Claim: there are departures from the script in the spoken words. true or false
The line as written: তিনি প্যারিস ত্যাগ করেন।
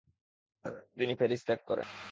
false